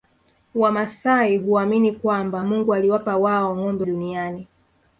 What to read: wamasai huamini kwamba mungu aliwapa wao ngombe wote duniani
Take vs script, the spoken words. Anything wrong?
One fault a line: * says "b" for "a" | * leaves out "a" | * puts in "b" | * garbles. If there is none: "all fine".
* leaves out "wote"